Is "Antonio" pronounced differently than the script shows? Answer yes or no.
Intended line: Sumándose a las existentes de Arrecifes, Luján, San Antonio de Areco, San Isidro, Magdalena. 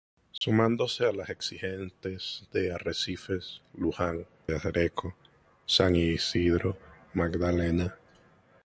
yes